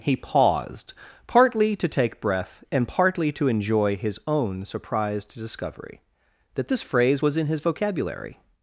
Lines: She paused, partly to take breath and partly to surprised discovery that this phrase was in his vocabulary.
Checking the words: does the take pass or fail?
fail